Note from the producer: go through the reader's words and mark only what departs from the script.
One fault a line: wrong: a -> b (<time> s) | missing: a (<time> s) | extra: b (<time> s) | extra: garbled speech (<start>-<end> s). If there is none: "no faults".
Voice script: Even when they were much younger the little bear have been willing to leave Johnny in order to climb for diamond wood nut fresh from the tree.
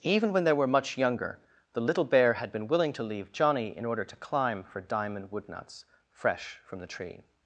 wrong: have -> had (2.3 s)
wrong: nut -> nuts (5.5 s)